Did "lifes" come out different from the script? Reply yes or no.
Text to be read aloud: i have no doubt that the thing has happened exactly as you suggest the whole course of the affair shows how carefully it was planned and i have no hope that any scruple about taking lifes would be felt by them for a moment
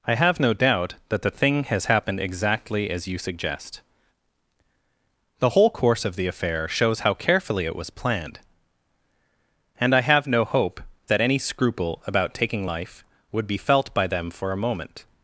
yes